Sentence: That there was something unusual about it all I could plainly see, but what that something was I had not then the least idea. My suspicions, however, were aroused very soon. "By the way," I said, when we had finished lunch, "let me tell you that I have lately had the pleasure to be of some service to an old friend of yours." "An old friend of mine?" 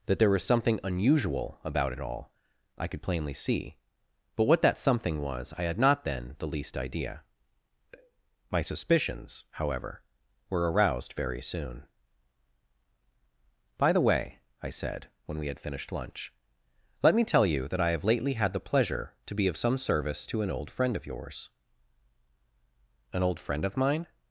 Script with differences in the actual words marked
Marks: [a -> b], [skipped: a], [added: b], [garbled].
That there was something unusual about it all I could plainly see, but what that something was I had not then the least idea. My suspicions, however, were aroused very soon. "By the way," I said, when we had finished lunch, "let me tell you that I have lately had the pleasure to be of some service to an old friend of yours." "An old friend of mine?"